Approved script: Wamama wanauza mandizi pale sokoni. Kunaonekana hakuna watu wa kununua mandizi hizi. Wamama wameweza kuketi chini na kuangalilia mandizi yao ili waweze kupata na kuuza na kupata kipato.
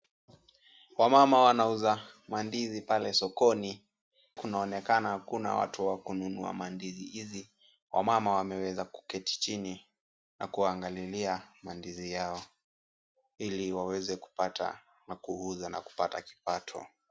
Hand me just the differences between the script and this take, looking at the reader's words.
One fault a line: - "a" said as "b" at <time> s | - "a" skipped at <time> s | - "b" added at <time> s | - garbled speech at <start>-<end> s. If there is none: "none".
none